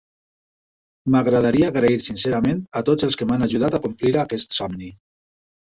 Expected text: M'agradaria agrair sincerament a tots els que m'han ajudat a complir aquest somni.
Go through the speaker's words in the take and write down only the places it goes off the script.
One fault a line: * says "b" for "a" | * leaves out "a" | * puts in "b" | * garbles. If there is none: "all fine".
all fine